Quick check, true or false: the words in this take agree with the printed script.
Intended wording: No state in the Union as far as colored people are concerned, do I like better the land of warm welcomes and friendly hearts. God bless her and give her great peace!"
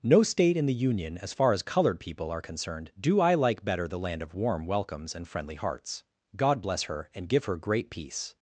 true